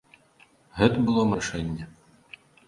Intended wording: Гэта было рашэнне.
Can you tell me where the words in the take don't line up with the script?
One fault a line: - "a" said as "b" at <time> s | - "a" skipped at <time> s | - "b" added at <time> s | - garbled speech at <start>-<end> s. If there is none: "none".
none